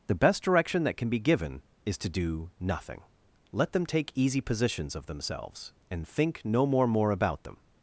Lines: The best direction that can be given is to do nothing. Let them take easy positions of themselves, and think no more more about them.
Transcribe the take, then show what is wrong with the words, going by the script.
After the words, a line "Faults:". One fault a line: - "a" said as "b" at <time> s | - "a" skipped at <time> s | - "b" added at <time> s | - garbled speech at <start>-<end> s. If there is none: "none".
The best direction that can be given is to do nothing. Let them take easy positions of themselves, and think no more more about them.
Faults:
none